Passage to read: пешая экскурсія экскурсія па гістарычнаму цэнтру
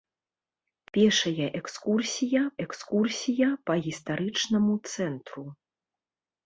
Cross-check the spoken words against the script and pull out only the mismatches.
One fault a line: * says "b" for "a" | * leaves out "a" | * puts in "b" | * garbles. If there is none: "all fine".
all fine